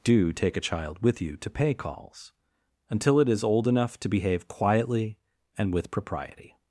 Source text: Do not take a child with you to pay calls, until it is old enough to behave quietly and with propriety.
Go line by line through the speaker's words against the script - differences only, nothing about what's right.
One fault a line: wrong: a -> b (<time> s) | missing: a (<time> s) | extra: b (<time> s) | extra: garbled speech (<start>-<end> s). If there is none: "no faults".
missing: not (0.3 s)